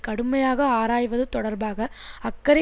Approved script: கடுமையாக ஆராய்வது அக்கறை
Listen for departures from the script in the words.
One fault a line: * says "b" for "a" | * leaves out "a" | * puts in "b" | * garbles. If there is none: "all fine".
* puts in "தொடர்பாக"